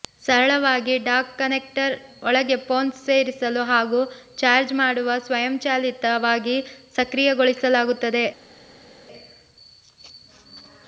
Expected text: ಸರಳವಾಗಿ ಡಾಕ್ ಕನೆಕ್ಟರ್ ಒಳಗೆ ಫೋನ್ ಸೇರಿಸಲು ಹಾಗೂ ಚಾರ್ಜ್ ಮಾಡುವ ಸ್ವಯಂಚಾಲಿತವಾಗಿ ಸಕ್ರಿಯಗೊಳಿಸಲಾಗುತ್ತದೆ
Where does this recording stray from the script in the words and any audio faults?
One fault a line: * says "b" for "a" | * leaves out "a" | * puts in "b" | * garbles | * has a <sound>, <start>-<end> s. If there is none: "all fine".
all fine